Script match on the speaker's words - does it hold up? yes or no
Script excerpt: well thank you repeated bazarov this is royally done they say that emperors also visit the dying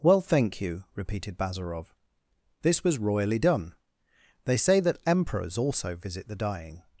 no